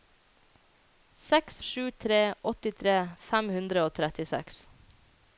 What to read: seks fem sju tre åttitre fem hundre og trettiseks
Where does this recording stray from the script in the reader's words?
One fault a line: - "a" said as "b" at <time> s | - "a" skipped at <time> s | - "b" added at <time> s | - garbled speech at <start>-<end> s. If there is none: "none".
- "fem" skipped at 1.6 s